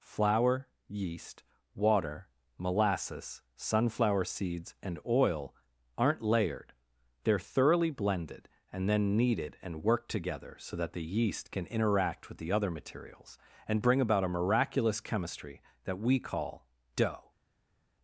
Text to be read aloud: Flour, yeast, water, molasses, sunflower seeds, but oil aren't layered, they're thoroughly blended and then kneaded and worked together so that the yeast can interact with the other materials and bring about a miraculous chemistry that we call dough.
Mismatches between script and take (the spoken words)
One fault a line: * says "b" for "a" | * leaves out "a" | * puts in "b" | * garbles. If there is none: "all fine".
* says "and" for "but"